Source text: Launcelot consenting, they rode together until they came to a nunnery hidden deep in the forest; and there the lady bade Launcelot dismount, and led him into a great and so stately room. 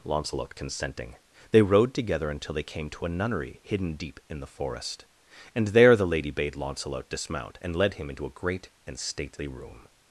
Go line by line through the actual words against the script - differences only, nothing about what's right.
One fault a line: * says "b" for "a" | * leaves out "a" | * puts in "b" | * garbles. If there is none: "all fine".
* leaves out "so"